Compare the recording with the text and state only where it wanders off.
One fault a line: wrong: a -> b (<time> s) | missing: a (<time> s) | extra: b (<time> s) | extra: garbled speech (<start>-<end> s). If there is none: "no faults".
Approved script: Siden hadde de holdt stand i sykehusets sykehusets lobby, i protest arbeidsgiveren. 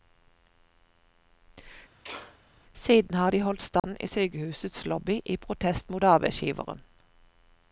wrong: hadde -> har (3.1 s)
missing: sykehusets (4.8 s)
extra: mot (5.9 s)